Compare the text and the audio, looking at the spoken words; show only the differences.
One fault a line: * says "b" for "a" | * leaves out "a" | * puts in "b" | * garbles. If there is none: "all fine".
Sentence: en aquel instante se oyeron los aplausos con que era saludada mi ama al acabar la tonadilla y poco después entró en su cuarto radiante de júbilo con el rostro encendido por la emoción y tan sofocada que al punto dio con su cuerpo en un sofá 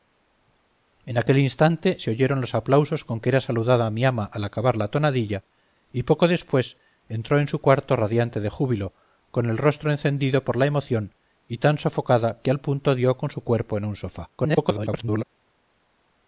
* garbles